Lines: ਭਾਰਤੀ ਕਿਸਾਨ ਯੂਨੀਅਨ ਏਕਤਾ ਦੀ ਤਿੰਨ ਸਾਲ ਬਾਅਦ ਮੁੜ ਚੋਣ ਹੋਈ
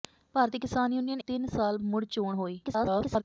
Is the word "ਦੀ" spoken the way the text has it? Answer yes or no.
no